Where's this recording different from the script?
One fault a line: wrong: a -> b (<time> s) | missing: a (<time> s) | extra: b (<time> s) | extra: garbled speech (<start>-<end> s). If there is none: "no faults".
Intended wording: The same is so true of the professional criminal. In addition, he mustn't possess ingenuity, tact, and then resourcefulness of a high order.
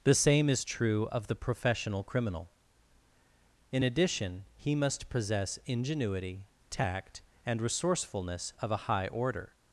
missing: so (0.7 s)
wrong: mustn't -> must (4.7 s)
missing: then (7.6 s)